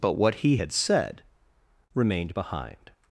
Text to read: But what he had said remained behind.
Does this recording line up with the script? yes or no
yes